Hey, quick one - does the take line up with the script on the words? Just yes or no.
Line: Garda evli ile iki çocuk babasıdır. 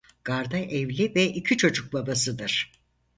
no